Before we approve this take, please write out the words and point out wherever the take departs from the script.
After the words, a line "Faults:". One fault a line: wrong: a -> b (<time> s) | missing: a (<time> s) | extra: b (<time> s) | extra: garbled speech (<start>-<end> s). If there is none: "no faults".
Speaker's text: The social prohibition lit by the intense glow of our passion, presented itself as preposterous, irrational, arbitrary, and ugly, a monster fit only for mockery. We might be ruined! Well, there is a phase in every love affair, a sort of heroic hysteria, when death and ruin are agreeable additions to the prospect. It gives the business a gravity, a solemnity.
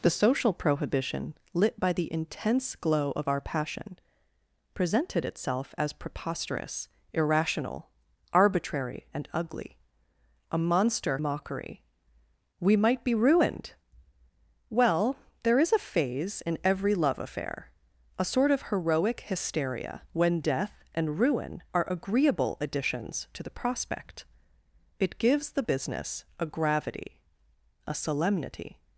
The social prohibition lit by the intense glow of our passion, presented itself as preposterous, irrational, arbitrary, and ugly, a monster mockery. We might be ruined! Well, there is a phase in every love affair, a sort of heroic hysteria, when death and ruin are agreeable additions to the prospect. It gives the business a gravity, a solemnity.
Faults:
missing: fit only for (11.2 s)